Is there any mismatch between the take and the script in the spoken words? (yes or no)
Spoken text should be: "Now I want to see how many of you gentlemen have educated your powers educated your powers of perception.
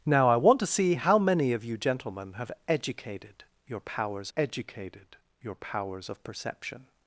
no